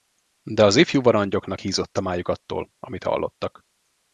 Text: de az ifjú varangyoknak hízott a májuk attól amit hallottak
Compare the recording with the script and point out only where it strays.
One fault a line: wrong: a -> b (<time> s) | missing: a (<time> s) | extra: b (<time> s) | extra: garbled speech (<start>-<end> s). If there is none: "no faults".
no faults